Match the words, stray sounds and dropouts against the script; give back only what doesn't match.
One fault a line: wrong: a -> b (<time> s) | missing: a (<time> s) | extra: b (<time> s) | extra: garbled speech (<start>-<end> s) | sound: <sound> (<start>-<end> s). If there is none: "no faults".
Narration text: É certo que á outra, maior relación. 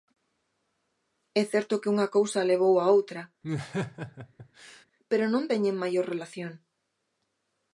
extra: unha cousa levou (1.9 s)
sound: laugh (3.4-4.9 s)
extra: pero non teñen (5.1 s)